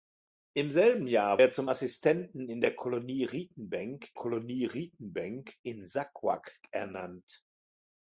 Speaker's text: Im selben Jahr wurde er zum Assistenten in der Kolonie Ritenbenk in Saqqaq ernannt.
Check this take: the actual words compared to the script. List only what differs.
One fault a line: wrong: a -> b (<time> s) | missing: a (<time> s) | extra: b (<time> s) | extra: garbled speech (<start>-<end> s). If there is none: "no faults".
missing: wurde (1.4 s)
extra: Kolonie Ritenbenk (4.1 s)